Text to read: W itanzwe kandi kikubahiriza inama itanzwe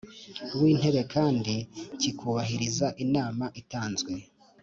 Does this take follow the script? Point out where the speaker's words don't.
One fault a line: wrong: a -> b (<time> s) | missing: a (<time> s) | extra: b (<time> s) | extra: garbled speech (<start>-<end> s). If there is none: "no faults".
wrong: itanzwe -> intebe (0.7 s)